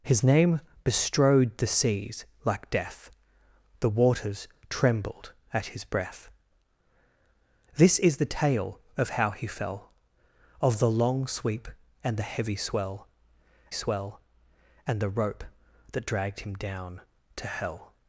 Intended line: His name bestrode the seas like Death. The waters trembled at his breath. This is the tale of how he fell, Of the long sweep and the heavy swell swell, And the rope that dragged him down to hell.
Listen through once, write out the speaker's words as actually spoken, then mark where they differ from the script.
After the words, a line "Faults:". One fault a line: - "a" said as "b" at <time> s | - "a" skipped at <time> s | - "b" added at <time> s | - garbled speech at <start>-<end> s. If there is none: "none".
His name bestrode the seas like Death. The waters trembled at his breath. This is the tale of how he fell, Of the long sweep and the heavy swell swell, And the rope that dragged him down to hell.
Faults:
none